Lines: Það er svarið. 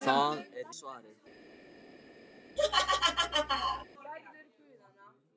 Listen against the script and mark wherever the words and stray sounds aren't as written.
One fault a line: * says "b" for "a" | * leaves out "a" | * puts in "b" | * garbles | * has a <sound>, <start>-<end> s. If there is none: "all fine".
* has a laugh, 2.6-3.9 s